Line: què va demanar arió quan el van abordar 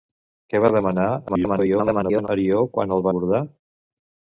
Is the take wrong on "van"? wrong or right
wrong